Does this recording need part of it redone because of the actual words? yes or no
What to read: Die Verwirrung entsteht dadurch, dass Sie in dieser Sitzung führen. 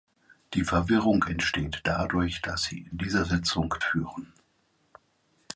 no